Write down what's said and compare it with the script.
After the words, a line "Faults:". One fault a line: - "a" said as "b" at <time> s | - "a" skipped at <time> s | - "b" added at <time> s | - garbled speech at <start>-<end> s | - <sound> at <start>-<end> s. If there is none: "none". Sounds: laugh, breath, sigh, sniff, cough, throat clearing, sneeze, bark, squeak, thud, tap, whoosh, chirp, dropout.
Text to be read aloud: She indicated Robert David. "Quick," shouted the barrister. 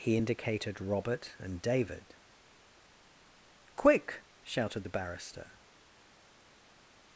He indicated Robert and David. "Quick," shouted the barrister.
Faults:
- "She" said as "He" at 0.0 s
- "and" added at 1.4 s